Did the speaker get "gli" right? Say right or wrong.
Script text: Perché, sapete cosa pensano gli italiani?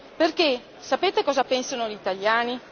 right